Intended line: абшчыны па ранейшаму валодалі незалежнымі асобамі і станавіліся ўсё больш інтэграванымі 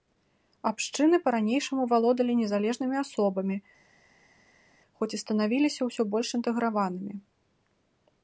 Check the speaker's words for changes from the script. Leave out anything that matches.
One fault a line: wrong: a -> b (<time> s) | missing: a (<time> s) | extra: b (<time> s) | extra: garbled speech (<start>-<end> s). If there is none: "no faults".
extra: хоць (5.0 s)